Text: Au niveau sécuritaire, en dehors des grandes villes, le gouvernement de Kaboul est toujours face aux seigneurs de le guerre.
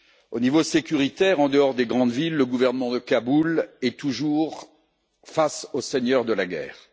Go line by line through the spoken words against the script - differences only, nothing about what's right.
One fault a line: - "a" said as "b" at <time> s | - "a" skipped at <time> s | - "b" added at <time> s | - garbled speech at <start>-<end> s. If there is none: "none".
- "le" said as "la" at 6.3 s